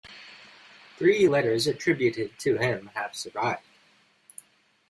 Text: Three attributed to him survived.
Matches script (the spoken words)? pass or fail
fail